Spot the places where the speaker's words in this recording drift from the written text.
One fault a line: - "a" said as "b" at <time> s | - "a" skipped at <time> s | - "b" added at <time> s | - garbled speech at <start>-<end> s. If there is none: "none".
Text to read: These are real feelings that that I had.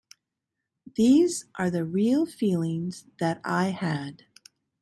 - "the" added at 1.7 s
- "that" skipped at 3.4 s